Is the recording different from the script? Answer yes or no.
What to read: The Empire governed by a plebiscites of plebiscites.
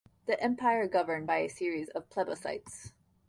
yes